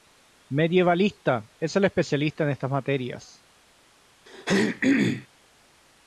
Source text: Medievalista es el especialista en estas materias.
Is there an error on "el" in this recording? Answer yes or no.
no